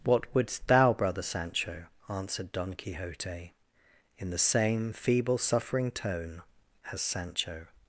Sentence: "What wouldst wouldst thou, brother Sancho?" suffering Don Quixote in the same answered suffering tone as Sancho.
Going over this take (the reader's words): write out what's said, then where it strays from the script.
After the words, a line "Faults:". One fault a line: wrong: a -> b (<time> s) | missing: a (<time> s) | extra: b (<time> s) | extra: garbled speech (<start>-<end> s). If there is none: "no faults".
"What wouldst thou, brother Sancho?" answered Don Quixote in the same feeble suffering tone as Sancho.
Faults:
missing: wouldst (0.7 s)
wrong: suffering -> answered (2.1 s)
wrong: answered -> feeble (4.9 s)